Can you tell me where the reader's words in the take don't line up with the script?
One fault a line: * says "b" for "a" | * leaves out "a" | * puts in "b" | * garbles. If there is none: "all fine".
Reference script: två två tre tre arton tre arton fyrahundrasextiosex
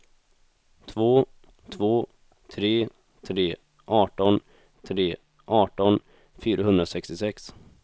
all fine